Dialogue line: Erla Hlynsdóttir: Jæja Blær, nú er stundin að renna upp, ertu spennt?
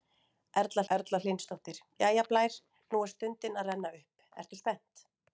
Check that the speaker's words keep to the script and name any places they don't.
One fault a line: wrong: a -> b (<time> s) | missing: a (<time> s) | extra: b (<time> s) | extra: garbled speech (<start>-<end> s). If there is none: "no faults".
extra: erla (1.0 s)